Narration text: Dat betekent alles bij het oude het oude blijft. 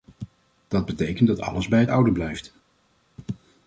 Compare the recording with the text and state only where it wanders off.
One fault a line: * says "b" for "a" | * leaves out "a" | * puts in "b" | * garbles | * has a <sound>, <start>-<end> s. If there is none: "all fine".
* puts in "dat"
* leaves out "het oude"